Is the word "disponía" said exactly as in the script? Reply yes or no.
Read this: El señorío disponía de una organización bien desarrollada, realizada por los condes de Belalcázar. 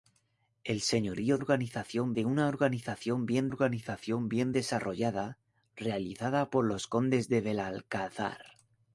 no